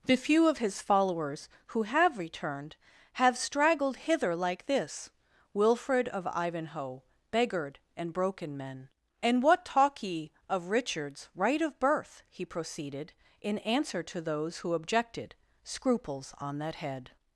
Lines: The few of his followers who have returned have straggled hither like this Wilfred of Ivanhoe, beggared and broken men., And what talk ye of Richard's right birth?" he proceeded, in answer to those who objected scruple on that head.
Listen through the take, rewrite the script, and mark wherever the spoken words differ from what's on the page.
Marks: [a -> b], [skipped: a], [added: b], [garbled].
The few of his followers who have returned have straggled hither like this Wilfred of Ivanhoe, beggared and broken men., And what talk ye of Richard's right [added: of] birth?" he proceeded, in answer to those who objected [scruple -> scruples] on that head.